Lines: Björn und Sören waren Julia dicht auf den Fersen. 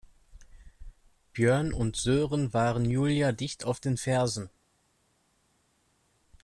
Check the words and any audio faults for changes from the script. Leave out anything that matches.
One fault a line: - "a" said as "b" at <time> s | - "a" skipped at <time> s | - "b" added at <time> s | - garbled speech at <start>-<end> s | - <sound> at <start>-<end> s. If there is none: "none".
none